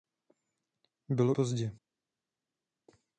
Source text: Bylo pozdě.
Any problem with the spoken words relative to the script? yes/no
no